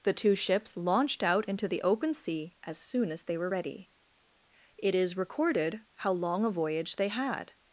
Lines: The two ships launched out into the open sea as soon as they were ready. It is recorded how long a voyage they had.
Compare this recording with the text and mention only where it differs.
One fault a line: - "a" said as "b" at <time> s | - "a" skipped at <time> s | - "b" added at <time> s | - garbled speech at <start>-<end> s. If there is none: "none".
none